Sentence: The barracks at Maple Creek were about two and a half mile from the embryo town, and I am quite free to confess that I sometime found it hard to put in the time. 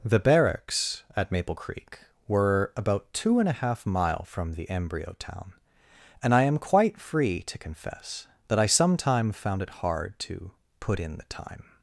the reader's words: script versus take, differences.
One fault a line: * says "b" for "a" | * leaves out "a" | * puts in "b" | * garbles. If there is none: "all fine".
all fine